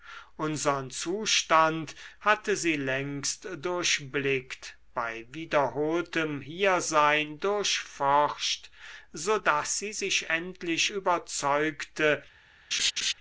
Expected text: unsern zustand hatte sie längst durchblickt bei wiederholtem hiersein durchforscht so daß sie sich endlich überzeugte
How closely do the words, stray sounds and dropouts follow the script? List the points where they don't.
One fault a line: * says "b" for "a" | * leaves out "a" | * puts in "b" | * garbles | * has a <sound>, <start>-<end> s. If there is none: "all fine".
* has a laugh, 12.7-13.1 s